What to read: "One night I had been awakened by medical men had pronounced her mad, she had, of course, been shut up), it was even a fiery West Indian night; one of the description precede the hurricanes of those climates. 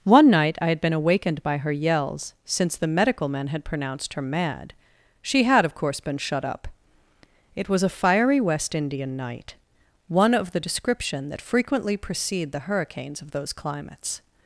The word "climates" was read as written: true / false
true